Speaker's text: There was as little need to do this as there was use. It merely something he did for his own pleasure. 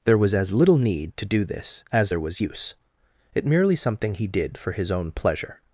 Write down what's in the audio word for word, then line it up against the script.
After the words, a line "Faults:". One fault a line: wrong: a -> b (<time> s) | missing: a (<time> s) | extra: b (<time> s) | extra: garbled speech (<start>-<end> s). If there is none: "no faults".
There was as little need to do this as there was use. It merely something he did for his own pleasure.
Faults:
no faults